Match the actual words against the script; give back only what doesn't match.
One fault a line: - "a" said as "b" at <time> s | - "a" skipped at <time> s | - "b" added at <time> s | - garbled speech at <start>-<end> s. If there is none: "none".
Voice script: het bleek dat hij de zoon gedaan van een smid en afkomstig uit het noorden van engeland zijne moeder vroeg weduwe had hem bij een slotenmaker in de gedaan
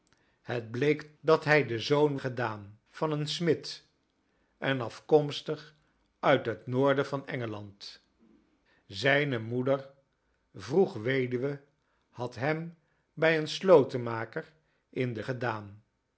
none